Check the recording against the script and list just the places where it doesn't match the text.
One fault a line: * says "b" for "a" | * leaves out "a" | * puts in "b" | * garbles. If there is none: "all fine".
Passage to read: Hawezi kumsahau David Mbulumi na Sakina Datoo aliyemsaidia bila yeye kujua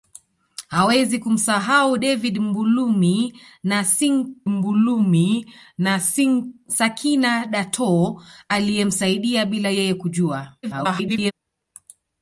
* puts in "Mbulumi na"
* garbles